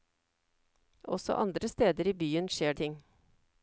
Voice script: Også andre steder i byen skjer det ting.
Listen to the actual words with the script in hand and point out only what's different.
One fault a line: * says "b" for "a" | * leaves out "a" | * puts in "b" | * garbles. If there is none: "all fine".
* leaves out "det"